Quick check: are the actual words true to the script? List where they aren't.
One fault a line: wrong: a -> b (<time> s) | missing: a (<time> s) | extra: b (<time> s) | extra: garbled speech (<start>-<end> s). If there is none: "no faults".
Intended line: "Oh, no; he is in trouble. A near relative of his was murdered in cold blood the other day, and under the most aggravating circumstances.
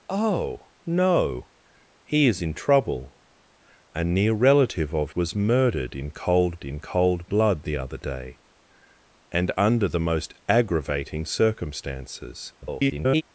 missing: his (5.1 s)
extra: in cold (6.6 s)
extra: garbled speech (12.6-13.2 s)